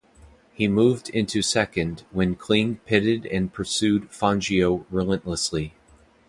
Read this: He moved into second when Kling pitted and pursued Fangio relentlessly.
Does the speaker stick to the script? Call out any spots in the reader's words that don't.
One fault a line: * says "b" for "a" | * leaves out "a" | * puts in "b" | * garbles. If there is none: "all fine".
all fine